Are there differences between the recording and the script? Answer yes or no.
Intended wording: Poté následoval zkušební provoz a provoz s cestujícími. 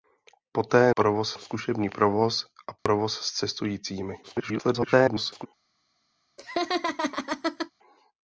yes